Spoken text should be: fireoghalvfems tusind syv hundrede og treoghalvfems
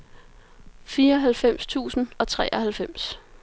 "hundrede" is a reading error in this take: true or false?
true